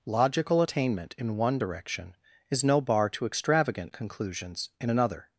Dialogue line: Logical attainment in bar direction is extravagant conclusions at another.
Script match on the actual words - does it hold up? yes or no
no